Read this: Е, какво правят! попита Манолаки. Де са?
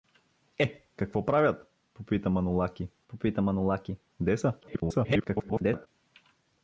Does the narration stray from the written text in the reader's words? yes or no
yes